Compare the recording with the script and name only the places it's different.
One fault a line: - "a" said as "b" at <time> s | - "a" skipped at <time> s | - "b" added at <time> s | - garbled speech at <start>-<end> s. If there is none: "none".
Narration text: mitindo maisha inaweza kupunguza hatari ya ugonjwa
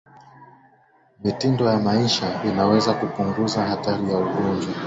- "ya" added at 1.6 s